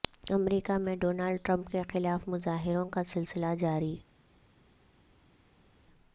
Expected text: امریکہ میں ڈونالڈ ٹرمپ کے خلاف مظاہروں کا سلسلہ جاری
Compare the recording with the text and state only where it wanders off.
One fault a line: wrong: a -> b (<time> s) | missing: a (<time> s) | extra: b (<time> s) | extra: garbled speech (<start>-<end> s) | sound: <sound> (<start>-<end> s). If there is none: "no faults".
no faults